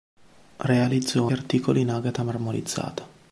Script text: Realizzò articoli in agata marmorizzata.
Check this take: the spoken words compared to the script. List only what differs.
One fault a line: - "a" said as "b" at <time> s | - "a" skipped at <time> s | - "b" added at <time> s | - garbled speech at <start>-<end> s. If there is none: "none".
none